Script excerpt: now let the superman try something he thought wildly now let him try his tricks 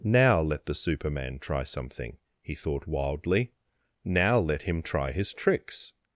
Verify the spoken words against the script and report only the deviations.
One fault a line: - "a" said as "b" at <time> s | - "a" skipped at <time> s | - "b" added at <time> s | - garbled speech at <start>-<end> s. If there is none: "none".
none